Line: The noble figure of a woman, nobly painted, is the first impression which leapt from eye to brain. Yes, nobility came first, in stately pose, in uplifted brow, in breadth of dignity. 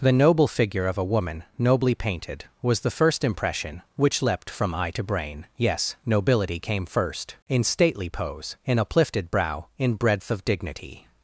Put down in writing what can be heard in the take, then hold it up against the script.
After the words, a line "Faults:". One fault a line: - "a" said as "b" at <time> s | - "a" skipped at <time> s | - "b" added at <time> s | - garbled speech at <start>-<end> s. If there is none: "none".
The noble figure of a woman, nobly painted, was the first impression which leapt from eye to brain. Yes, nobility came first, in stately pose, in uplifted brow, in breadth of dignity.
Faults:
- "is" said as "was" at 2.6 s